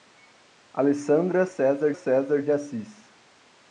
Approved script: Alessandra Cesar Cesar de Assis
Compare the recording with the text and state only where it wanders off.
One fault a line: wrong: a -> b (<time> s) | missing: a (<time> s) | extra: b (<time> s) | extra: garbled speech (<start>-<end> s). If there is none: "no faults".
no faults